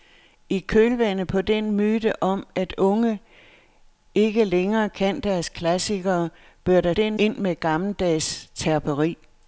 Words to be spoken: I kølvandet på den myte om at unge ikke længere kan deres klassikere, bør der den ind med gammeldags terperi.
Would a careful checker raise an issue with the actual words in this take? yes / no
no